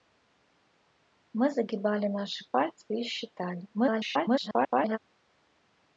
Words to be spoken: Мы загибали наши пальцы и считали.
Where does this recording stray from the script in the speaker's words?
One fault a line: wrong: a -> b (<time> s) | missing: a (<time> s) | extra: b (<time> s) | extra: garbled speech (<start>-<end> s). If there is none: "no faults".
extra: garbled speech (3.7-5.0 s)